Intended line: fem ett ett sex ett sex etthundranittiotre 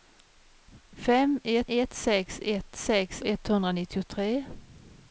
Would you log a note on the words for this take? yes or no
no